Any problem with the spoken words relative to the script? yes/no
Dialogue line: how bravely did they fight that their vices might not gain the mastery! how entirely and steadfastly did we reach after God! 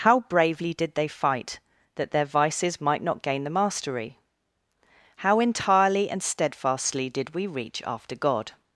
no